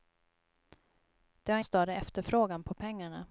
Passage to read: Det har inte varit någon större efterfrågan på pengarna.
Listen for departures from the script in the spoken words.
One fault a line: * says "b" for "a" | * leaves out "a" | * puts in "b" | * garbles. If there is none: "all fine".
* leaves out "inte varit någon"